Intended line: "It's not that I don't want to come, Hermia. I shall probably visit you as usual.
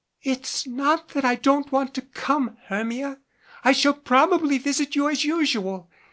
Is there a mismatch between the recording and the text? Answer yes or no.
no